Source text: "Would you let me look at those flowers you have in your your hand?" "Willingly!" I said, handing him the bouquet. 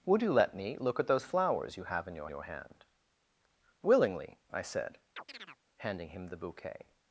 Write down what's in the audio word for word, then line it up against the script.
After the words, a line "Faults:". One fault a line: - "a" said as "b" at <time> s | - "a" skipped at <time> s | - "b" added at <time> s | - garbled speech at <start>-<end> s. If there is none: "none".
"Would you let me look at those flowers you have in your your hand?" "Willingly!" I said, handing him the bouquet.
Faults:
none